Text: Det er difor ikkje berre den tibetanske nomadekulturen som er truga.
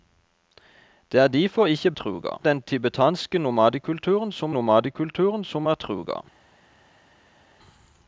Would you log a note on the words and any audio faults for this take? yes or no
yes